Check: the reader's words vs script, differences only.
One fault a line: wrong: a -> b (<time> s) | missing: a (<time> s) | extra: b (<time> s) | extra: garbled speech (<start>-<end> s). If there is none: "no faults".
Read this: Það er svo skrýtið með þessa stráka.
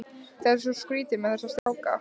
no faults